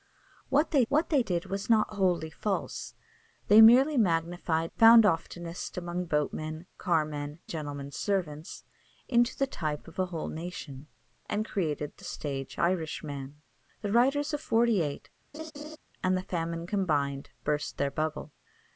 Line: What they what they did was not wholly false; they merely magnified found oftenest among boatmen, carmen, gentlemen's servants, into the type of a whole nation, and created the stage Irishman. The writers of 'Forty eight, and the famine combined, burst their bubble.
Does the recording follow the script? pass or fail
pass